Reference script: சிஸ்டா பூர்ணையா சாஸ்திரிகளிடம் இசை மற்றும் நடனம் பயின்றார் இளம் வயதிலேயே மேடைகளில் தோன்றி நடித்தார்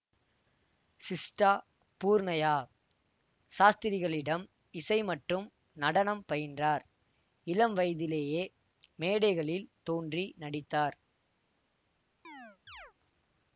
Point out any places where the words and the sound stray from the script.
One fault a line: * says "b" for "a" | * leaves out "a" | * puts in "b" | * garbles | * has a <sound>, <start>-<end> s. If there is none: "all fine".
* has a chirp, 12.2-12.9 s